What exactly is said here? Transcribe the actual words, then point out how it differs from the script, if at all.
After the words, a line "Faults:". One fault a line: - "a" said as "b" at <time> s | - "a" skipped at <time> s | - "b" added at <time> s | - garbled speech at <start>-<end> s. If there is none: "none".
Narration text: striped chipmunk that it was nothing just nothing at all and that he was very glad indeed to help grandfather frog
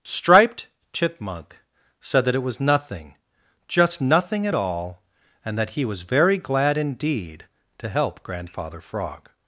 striped chipmunk said that it was nothing just nothing at all and that he was very glad indeed to help grandfather frog
Faults:
- "said" added at 2.0 s